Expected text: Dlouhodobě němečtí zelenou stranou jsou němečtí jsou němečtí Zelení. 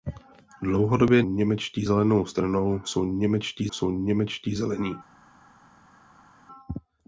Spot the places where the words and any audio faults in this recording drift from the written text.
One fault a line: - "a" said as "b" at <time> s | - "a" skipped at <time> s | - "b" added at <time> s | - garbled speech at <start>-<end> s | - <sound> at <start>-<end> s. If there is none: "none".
none